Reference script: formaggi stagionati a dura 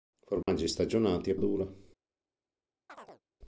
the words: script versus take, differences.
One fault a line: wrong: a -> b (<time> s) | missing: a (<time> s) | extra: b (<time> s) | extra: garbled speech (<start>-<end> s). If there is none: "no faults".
no faults